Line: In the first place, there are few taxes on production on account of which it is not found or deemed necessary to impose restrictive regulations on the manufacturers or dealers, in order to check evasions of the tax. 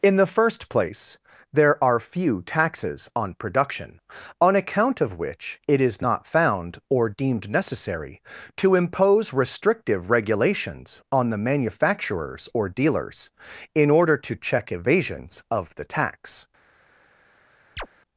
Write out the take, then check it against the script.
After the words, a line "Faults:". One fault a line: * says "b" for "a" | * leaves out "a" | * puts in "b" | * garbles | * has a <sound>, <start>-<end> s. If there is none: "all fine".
In the first place, there are few taxes on production on account of which it is not found or deemed necessary to impose restrictive regulations on the manufacturers or dealers, in order to check evasions of the tax.
Faults:
* has a chirp, 17.8-17.9 s